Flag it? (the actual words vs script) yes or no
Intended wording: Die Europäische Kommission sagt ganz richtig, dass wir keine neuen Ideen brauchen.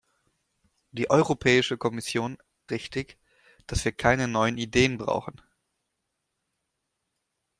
yes